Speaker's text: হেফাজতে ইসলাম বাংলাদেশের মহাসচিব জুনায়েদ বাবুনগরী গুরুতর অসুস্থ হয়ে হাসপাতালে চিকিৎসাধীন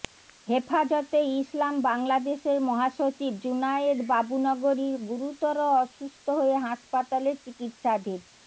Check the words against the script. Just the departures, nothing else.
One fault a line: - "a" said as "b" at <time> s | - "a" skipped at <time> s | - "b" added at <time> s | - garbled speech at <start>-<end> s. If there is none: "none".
none